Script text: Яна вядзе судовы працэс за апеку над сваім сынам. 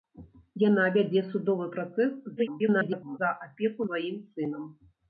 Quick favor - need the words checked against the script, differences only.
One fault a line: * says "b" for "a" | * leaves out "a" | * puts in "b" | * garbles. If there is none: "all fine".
* garbles
* leaves out "над"